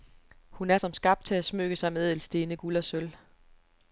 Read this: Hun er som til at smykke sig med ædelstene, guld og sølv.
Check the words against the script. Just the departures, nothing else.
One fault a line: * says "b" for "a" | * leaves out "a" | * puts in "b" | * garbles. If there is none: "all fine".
* puts in "skabt"